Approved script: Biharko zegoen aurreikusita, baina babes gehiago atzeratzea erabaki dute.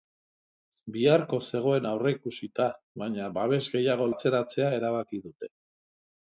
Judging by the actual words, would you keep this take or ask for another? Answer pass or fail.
pass